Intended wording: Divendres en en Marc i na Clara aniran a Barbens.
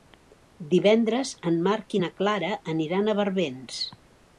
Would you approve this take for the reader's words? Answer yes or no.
no